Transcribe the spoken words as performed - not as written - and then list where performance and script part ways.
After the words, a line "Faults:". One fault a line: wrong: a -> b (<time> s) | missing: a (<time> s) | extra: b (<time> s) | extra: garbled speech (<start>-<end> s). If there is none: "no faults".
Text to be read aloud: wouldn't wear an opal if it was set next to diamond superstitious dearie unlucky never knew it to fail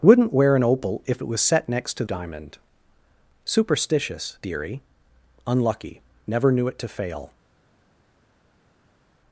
wouldn't wear an opal if it was set next to diamond superstitious dearie unlucky never knew it to fail
Faults:
no faults